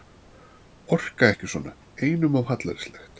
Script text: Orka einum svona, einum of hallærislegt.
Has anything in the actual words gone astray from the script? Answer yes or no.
yes